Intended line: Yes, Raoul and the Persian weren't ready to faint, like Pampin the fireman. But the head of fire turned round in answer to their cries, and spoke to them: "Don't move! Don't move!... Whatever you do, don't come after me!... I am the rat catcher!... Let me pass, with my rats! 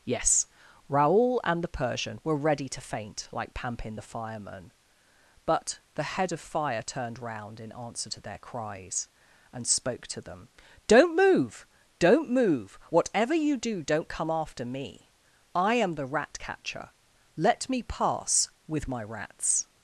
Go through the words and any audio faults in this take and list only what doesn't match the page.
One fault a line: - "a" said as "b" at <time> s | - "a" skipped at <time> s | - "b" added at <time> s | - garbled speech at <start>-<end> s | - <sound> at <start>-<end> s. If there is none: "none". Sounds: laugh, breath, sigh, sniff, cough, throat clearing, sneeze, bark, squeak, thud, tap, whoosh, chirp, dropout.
- "weren't" said as "were" at 2.2 s